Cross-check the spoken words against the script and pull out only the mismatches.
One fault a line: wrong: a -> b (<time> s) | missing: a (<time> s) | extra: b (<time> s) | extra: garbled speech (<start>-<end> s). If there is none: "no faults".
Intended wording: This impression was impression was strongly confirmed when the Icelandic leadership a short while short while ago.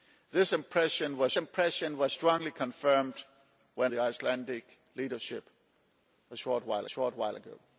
no faults